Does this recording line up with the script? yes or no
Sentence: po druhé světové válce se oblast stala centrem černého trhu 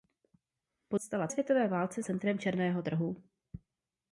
no